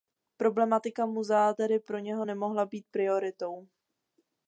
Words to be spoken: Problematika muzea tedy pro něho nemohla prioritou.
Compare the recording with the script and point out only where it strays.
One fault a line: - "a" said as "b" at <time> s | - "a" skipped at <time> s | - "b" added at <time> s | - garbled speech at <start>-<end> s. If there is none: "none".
- "být" added at 2.6 s